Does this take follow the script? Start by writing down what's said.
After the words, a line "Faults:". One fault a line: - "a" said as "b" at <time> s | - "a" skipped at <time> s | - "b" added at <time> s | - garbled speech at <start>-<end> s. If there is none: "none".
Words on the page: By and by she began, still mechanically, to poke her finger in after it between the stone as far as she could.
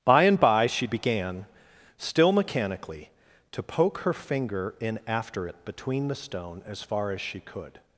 By and by she began, still mechanically, to poke her finger in after it between the stone as far as she could.
Faults:
none